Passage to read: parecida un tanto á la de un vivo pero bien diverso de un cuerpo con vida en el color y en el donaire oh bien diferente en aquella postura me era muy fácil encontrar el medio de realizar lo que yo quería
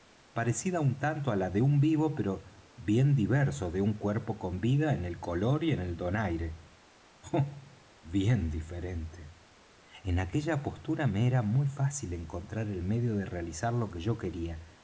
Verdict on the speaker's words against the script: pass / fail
pass